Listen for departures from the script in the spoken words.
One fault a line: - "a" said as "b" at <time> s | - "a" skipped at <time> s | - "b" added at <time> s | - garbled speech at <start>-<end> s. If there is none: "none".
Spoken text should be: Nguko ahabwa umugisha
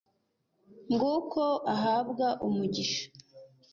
none